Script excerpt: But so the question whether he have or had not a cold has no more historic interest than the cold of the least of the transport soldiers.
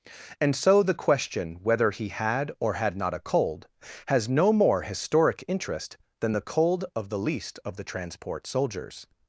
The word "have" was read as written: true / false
false